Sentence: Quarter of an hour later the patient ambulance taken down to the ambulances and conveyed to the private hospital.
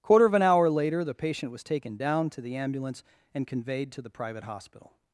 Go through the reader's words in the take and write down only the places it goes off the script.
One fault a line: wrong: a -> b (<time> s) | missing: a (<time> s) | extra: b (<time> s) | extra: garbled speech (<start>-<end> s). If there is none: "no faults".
wrong: ambulance -> was (1.5 s)
wrong: ambulances -> ambulance (2.6 s)